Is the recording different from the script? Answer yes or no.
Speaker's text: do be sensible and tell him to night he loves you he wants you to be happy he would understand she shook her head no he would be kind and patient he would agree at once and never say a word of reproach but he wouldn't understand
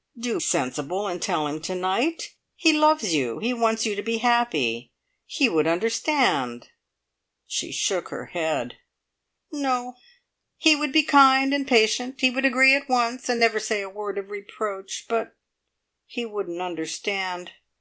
yes